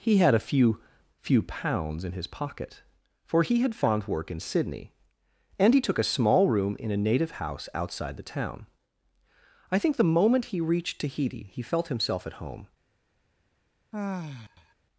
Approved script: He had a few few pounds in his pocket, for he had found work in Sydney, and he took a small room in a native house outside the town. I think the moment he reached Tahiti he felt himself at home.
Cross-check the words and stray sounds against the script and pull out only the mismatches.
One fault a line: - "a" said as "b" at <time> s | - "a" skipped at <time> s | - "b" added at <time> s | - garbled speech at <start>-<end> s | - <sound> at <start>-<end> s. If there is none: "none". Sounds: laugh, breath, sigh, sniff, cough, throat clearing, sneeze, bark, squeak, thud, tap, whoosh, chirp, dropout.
- sigh at 13.9-14.7 s